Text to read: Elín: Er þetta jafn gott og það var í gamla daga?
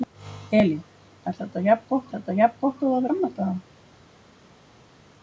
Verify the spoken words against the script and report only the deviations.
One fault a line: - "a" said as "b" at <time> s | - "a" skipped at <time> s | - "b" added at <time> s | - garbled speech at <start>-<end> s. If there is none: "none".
- "þetta jafn gott" added at 2.1 s
- "var" skipped at 3.1 s